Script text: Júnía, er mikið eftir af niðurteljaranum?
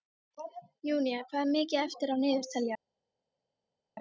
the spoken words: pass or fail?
fail